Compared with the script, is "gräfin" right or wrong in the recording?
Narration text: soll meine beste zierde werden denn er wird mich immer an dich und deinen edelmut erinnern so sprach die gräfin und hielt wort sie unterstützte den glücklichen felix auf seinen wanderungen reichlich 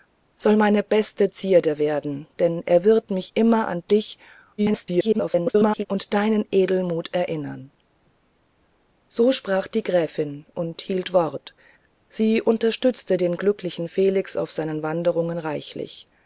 right